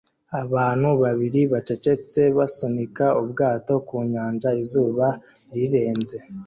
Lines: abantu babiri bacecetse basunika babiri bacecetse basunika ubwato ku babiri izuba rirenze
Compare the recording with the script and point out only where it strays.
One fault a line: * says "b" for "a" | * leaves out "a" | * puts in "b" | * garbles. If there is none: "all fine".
* leaves out "babiri bacecetse basunika"
* says "nyanja" for "babiri"